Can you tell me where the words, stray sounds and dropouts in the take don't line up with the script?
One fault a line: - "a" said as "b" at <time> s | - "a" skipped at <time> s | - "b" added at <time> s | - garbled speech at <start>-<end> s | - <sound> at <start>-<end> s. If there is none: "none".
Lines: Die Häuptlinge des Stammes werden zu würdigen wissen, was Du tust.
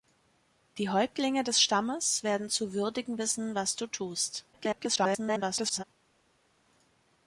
- garbled speech at 4.5-5.8 s